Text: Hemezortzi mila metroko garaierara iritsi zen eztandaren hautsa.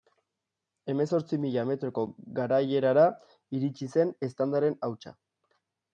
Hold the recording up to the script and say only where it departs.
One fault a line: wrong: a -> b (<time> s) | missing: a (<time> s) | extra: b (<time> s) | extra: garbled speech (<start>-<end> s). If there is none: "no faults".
no faults